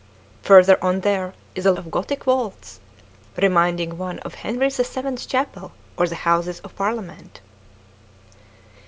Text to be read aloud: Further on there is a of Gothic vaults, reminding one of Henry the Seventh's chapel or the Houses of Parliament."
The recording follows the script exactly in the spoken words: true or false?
true